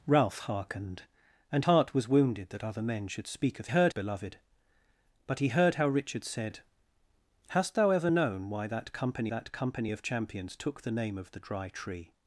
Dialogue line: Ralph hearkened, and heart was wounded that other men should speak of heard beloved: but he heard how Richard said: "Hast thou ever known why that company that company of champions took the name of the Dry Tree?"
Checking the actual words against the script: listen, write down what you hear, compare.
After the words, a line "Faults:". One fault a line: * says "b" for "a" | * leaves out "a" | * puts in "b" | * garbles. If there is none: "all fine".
Ralph hearkened, and heart was wounded that other men should speak of heard beloved: but he heard how Richard said: "Hast thou ever known why that company that company of champions took the name of the Dry Tree?"
Faults:
all fine